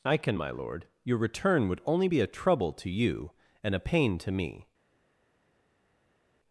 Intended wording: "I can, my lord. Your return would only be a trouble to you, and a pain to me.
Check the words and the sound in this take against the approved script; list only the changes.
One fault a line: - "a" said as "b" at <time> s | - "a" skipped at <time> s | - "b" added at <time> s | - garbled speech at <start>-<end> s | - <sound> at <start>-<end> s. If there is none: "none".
none